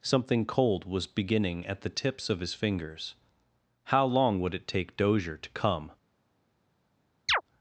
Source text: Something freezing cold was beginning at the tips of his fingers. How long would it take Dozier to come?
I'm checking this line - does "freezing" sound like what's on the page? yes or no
no